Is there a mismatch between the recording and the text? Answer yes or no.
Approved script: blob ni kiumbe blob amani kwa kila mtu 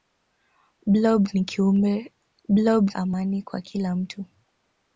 no